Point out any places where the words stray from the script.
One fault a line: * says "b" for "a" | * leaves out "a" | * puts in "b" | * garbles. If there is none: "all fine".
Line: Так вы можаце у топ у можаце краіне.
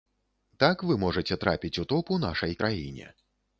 * puts in "трапіць"
* says "нашай" for "можаце"